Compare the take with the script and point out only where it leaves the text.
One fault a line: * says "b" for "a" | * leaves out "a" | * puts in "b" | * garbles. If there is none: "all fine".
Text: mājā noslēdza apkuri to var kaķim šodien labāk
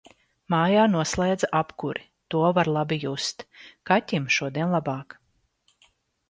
* puts in "labi just"